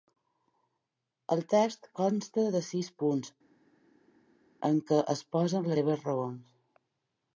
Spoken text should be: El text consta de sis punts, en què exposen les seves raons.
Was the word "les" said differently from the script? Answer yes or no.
yes